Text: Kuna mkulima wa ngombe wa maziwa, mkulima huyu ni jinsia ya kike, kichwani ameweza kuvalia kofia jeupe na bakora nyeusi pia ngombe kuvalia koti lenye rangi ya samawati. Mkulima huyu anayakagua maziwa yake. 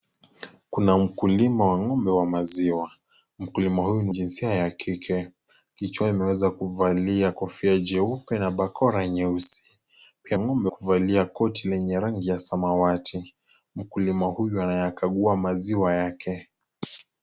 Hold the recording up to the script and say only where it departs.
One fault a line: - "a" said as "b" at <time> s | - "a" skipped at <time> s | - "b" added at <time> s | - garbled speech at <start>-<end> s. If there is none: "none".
none